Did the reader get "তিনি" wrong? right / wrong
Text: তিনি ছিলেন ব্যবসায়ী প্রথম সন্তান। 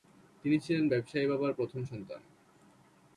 right